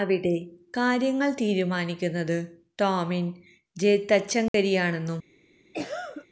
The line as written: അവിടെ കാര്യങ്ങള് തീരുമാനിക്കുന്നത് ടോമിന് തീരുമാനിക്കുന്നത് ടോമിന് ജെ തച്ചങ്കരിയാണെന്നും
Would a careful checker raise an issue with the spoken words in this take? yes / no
yes